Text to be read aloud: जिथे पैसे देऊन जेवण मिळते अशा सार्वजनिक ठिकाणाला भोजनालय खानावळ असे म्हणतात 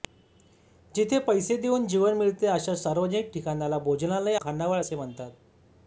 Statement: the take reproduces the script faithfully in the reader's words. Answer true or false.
true